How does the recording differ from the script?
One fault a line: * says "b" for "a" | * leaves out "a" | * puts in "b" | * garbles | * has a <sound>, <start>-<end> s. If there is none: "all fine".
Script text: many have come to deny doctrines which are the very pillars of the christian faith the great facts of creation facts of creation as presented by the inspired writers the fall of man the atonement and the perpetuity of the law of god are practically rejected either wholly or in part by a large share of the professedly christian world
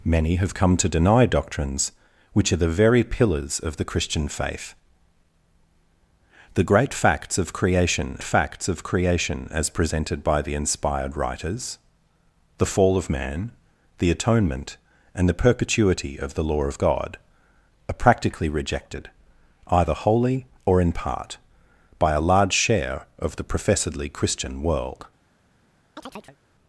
* has a chirp, 26.0-26.4 s